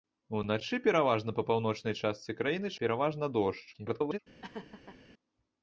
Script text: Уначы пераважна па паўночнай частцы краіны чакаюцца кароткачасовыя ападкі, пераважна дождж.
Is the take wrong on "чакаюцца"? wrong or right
wrong